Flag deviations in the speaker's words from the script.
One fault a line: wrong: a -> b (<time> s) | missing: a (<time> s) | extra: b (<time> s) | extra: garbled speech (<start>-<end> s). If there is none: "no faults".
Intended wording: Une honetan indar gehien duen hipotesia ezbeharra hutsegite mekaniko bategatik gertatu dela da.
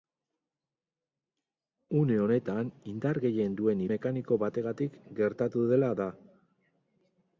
missing: hipotesia ezbeharra hutsegite (3.9 s)